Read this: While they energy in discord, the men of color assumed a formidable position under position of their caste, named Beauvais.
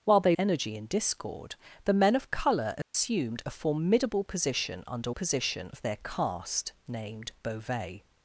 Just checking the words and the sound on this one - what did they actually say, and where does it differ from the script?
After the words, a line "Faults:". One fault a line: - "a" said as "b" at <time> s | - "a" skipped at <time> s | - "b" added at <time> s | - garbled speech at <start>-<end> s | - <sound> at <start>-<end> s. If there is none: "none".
While they energy in discord, the men of color assumed a formidable position under position of their caste, named Beauvais.
Faults:
- dropout at 2.8-2.9 s